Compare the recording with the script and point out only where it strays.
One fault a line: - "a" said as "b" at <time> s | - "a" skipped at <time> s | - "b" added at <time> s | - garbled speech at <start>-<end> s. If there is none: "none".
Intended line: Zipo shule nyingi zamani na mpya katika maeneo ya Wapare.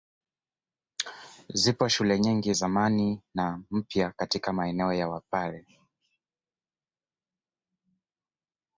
none